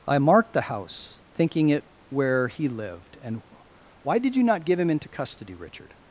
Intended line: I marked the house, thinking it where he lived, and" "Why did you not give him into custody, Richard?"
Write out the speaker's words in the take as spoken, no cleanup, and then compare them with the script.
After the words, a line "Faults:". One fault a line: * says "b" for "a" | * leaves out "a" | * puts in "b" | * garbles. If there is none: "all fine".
I marked the house, thinking it where he lived, and" "Why did you not give him into custody, Richard?"
Faults:
all fine